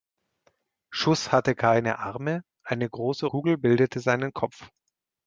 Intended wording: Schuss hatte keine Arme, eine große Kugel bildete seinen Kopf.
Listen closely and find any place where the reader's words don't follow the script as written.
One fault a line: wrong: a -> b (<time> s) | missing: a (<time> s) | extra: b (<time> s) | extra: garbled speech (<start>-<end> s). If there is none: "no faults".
no faults